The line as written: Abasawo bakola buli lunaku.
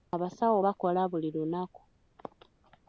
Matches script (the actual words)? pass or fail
pass